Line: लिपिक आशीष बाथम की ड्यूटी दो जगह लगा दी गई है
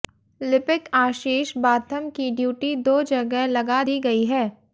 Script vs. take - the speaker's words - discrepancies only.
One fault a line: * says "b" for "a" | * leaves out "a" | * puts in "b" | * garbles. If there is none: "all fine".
all fine